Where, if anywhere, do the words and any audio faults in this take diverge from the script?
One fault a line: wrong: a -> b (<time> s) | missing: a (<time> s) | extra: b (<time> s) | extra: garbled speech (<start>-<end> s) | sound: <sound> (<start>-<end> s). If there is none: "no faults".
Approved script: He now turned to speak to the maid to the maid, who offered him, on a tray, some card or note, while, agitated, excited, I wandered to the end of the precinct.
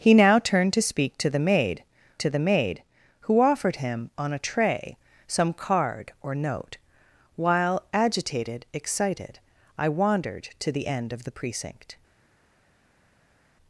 no faults